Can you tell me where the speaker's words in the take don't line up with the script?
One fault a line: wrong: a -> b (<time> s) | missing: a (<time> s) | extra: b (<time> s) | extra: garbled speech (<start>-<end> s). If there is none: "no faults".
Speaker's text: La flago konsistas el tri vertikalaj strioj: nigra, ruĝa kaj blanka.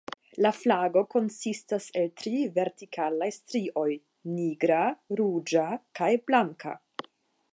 no faults